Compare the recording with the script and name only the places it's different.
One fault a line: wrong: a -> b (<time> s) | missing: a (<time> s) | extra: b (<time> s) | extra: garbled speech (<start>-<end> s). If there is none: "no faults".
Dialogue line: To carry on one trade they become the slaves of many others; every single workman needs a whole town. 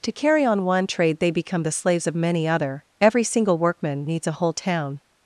wrong: others -> other (2.5 s)